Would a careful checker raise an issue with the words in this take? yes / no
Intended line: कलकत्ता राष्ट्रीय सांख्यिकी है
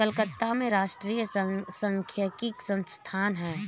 yes